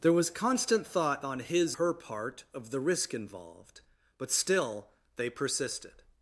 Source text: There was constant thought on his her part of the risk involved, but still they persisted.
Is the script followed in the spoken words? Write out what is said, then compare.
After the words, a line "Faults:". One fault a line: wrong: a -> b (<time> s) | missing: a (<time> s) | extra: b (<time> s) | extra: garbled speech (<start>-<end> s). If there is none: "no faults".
There was constant thought on his her part of the risk involved, but still they persisted.
Faults:
no faults